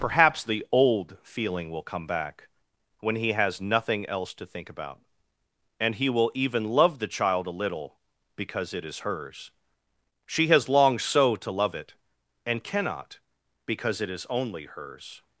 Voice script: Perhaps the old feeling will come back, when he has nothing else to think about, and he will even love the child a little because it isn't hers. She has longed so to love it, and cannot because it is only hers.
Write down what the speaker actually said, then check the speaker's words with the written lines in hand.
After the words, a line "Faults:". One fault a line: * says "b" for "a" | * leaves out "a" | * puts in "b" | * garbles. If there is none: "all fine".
Perhaps the old feeling will come back, when he has nothing else to think about, and he will even love the child a little because it is hers. She has longed so to love it, and cannot because it is only hers.
Faults:
* says "is" for "isn't"